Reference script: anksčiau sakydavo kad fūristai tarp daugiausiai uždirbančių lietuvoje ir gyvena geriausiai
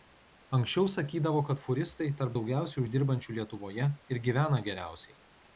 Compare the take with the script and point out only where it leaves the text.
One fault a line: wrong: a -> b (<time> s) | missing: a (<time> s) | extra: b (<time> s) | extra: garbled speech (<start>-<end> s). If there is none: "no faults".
no faults